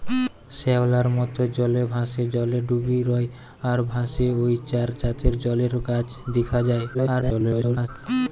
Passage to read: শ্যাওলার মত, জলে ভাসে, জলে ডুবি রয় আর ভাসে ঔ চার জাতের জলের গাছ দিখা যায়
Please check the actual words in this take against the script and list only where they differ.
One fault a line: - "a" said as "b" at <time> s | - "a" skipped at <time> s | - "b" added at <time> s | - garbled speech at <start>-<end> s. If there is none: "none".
- garbled speech at 6.9-7.9 s